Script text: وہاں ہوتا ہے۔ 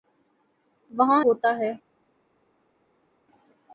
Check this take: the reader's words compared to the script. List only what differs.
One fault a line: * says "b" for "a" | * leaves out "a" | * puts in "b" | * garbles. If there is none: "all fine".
all fine